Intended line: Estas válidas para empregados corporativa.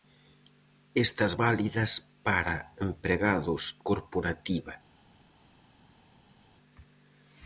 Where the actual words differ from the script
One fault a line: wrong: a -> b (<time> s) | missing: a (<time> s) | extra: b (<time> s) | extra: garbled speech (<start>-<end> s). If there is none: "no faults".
no faults